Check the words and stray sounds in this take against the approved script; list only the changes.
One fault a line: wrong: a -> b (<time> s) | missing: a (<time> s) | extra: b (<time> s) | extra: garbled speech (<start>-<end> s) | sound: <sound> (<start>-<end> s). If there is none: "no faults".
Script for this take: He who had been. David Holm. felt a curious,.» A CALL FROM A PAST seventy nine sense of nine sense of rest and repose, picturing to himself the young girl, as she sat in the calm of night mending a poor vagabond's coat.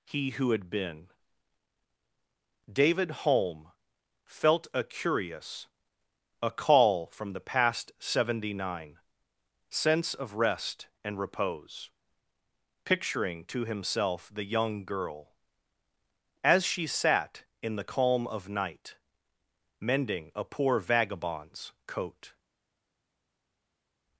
wrong: A -> THE (7.3 s)
missing: nine sense of (10.3 s)